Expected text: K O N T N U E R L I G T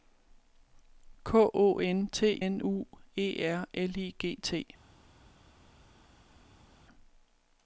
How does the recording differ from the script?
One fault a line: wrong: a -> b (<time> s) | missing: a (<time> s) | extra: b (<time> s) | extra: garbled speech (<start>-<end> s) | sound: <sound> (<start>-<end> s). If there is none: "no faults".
no faults